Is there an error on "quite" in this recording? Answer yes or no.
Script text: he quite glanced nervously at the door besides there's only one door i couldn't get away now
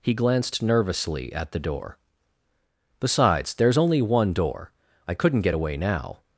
yes